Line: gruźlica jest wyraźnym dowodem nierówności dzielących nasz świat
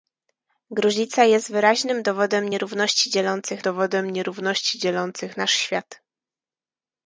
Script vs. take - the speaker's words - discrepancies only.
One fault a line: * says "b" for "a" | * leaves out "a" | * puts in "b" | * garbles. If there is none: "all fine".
* puts in "dowodem nierówności dzielących"